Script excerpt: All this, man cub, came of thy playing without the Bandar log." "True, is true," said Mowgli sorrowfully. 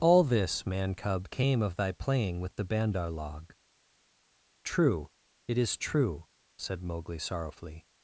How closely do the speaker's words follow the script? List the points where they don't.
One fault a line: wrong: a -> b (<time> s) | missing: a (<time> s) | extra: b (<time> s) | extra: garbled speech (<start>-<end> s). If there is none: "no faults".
wrong: without -> with (2.4 s)
extra: it (5.5 s)